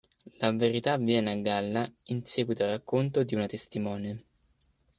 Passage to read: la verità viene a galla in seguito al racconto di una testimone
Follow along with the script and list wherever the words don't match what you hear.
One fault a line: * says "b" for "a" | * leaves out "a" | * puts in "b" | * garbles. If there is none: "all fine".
all fine